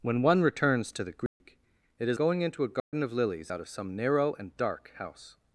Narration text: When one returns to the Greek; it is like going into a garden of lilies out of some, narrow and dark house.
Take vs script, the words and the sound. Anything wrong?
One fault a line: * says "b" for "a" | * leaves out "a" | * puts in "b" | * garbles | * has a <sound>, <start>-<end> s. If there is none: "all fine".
* has a dropout, 1.3-1.4 s
* leaves out "like"
* has a dropout, 2.8-2.9 s